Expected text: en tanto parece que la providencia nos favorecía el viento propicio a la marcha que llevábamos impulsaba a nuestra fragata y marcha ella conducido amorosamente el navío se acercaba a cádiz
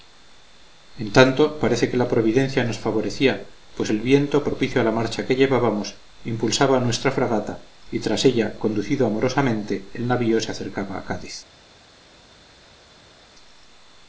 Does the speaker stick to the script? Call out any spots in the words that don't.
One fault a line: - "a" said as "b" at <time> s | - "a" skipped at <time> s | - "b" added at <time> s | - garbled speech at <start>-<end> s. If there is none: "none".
- "pues" added at 3.8 s
- "marcha" said as "tras" at 8.0 s